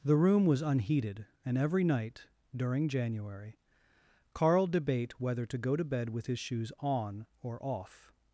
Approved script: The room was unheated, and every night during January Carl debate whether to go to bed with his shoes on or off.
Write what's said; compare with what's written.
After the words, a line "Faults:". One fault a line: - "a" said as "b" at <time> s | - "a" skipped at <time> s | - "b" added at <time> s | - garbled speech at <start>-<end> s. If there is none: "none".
The room was unheated, and every night during January Carl debate whether to go to bed with his shoes on or off.
Faults:
none